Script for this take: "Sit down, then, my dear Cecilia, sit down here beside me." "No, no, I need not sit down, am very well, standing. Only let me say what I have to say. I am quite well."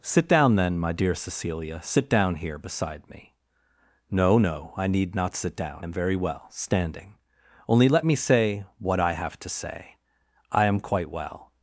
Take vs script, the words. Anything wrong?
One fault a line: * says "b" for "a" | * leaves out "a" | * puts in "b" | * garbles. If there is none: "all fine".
all fine